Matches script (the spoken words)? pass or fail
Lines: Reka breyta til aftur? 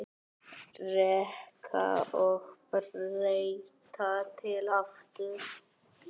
fail